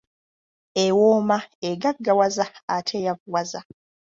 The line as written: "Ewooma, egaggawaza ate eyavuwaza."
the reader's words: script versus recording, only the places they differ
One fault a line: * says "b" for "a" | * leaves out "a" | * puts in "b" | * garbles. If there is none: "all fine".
all fine